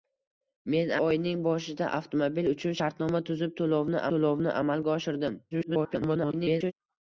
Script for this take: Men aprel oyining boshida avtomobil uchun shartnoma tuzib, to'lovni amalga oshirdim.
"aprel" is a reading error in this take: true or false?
true